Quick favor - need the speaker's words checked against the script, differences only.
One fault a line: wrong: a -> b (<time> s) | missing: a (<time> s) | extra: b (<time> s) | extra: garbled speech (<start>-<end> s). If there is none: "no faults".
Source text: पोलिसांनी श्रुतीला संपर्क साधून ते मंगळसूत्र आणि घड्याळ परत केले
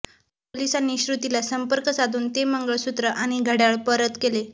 no faults